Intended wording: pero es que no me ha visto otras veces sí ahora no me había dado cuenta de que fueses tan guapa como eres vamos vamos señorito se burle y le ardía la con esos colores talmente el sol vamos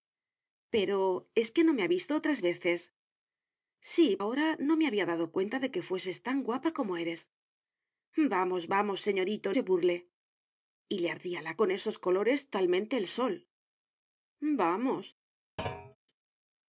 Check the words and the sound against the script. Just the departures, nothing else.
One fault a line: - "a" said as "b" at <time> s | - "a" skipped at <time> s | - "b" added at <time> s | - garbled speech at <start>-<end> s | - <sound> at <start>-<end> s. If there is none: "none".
- thud at 15.6-16.0 s